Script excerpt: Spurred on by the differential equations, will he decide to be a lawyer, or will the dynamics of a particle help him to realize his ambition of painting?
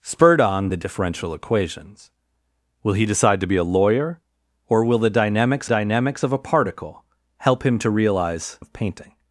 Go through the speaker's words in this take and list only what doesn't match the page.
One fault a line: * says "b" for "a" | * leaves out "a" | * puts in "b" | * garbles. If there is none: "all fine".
* leaves out "by"
* puts in "dynamics"
* leaves out "his ambition"